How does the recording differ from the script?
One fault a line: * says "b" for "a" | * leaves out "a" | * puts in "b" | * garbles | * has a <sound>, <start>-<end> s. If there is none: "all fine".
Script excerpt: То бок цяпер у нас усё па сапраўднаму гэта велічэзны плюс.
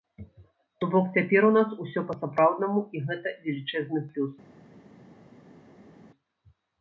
* puts in "і"